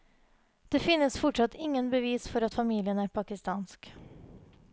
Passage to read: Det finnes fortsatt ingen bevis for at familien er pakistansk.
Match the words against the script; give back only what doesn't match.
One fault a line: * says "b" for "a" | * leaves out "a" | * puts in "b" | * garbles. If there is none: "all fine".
all fine